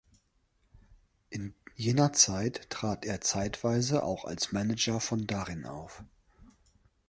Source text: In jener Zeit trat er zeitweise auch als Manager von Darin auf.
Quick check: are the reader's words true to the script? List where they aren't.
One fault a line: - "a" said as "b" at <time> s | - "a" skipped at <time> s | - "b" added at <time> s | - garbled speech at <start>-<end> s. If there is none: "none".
none